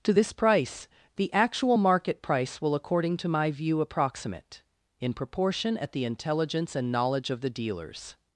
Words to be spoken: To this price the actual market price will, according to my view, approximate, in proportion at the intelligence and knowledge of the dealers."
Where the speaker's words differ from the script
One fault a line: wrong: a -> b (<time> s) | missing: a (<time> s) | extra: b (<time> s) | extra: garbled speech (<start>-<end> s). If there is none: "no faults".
no faults